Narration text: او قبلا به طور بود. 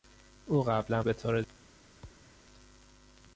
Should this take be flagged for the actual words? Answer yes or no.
no